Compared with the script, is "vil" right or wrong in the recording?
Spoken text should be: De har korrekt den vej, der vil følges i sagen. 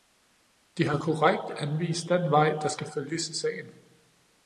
wrong